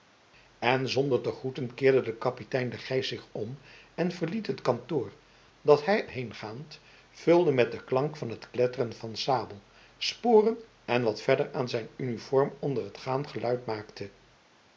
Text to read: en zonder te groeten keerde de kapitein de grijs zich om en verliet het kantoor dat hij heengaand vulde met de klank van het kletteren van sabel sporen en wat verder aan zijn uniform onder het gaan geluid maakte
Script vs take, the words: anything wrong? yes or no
no